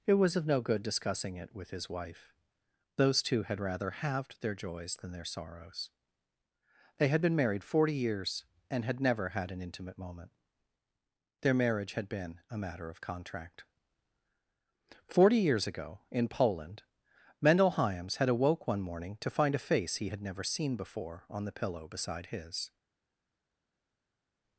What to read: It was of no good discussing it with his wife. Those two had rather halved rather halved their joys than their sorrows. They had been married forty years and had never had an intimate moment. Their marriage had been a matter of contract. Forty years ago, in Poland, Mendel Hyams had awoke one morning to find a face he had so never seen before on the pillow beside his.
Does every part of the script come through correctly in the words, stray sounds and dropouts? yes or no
no